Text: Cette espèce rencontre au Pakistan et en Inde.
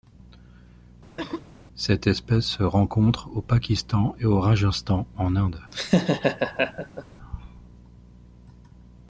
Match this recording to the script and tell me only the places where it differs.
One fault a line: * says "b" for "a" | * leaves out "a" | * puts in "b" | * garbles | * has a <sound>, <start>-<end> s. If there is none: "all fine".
* has a cough, 1.2-1.5 s
* puts in "se"
* puts in "au Rajasthan"
* has a laugh, 5.7-7.0 s